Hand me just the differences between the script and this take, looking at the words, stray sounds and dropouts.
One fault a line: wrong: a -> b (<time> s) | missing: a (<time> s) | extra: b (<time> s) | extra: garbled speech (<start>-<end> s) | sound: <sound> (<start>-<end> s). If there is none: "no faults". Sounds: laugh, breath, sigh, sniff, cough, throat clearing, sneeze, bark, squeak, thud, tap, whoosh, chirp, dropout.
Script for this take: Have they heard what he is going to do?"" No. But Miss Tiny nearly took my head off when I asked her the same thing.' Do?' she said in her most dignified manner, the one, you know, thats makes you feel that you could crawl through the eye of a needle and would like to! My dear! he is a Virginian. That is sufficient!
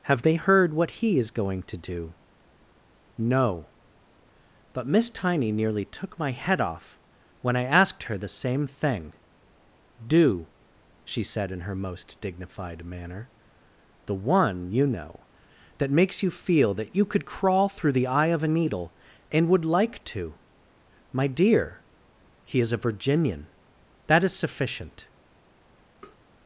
wrong: thats -> that (15.8 s)
sound: tap (26.0-26.2 s)